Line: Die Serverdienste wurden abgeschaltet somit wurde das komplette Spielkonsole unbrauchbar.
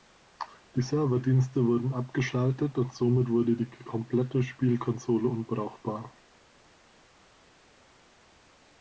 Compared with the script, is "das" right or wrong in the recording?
wrong